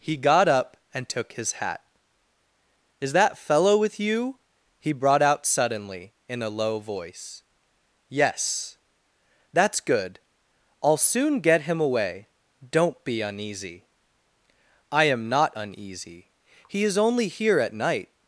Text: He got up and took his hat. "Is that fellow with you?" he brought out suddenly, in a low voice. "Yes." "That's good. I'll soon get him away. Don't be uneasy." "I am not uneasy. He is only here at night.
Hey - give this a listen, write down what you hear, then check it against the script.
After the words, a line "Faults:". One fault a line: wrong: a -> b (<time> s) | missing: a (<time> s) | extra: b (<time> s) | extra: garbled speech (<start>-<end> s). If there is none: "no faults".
He got up and took his hat. "Is that fellow with you?" he brought out suddenly, in a low voice. "Yes." "That's good. I'll soon get him away. Don't be uneasy." "I am not uneasy. He is only here at night.
Faults:
no faults